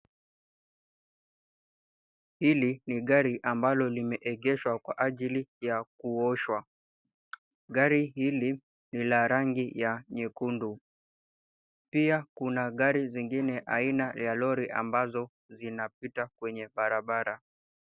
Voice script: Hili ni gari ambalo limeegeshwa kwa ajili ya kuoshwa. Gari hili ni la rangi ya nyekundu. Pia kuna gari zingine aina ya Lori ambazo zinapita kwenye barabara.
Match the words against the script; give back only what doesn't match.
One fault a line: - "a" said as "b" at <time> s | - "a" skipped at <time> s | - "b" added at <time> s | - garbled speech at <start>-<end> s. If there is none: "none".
none